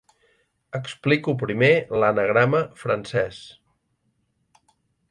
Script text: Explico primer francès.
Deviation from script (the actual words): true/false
true